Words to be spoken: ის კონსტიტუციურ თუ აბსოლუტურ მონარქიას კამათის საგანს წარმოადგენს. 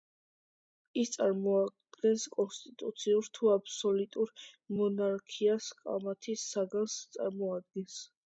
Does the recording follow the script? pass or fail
fail